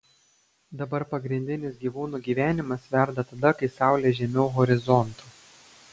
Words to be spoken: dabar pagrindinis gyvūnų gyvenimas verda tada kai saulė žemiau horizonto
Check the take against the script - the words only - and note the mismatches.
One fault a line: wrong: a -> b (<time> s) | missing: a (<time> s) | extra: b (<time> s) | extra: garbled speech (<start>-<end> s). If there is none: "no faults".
no faults